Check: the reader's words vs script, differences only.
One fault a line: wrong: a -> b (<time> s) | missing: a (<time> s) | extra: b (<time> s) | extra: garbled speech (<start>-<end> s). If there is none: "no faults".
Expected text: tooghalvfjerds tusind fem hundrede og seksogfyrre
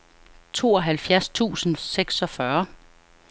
missing: fem hundrede og (1.8 s)